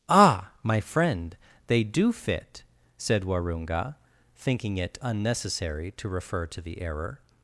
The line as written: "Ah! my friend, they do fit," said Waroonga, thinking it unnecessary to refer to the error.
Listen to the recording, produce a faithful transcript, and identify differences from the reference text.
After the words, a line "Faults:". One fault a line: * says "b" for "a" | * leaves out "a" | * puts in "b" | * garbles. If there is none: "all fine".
"Ah! my friend, they do fit," said Waroonga, thinking it unnecessary to refer to the error.
Faults:
all fine